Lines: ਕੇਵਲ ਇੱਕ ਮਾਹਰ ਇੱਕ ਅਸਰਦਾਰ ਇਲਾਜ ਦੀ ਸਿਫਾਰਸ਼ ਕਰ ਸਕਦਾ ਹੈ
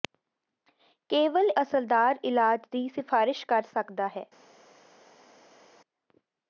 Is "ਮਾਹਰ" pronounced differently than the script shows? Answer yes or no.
yes